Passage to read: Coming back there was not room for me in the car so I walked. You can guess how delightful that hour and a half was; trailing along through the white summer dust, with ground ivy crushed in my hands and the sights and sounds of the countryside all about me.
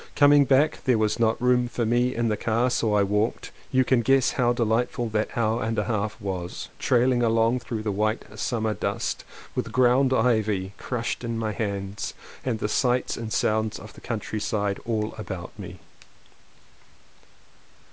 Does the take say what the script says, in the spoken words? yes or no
yes